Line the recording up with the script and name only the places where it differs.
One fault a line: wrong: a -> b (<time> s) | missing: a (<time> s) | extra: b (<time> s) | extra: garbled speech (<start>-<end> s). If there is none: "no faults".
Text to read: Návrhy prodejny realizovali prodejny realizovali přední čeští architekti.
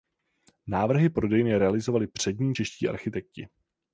missing: prodejny realizovali (2.1 s)